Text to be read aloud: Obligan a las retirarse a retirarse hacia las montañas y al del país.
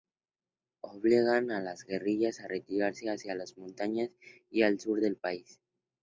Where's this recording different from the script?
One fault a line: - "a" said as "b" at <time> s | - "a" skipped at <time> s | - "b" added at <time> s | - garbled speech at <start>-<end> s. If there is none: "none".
- "retirarse" said as "guerrillas" at 1.9 s
- "sur" added at 4.8 s